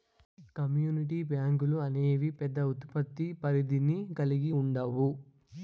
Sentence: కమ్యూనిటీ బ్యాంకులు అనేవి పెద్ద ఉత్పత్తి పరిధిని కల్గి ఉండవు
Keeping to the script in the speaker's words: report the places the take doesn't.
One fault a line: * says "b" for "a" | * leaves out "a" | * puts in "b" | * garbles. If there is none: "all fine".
all fine